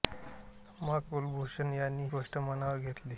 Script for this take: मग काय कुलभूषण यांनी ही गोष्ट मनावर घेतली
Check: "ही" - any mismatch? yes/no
yes